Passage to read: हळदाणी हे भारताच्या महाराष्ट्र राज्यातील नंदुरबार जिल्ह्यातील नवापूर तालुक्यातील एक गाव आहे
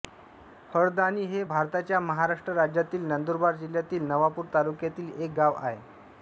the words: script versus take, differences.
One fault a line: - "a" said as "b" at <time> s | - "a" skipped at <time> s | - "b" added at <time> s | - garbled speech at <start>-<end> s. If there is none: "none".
none